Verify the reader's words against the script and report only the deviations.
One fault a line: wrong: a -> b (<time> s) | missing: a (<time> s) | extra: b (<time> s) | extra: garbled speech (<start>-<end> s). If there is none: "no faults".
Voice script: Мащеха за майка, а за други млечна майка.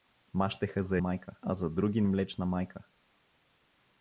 no faults